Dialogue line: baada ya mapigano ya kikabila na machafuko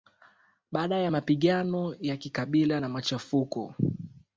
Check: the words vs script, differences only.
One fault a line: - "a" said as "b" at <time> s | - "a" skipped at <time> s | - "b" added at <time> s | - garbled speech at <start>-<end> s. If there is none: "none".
none